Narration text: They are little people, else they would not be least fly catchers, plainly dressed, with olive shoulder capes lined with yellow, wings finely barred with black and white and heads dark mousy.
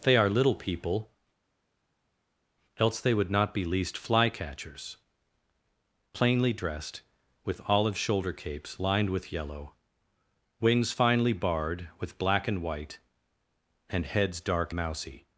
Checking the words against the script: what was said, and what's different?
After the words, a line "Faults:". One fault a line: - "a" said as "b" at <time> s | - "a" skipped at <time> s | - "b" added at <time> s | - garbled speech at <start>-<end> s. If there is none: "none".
They are little people, else they would not be least fly catchers, plainly dressed, with olive shoulder capes lined with yellow, wings finely barred with black and white and heads dark mousy.
Faults:
none